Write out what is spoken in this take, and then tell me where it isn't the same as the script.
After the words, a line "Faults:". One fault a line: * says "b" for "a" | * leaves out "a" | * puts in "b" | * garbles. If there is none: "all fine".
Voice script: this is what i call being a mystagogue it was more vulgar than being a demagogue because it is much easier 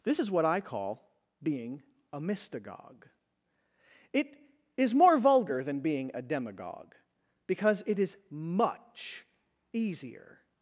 this is what i call being a mystagogue it is more vulgar than being a demagogue because it is much easier
Faults:
* says "is" for "was"